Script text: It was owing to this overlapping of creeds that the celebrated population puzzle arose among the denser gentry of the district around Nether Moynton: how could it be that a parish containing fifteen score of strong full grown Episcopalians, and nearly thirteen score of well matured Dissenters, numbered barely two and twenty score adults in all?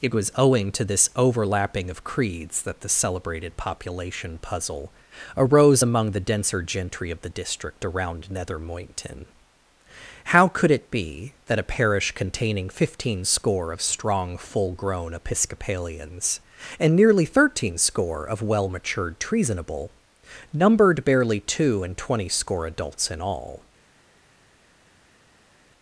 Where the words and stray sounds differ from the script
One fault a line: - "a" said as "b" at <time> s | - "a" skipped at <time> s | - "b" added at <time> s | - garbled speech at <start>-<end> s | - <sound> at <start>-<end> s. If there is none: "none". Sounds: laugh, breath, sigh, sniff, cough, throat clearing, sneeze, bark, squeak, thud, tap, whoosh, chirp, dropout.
- "Dissenters" said as "Treasonable" at 19.2 s